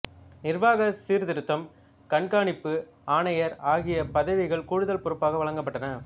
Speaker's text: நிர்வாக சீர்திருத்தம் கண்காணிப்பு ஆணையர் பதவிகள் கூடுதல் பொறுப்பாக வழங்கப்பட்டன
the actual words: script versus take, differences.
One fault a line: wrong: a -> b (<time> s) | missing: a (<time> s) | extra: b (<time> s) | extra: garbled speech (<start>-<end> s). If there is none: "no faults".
extra: ஆகிய (3.6 s)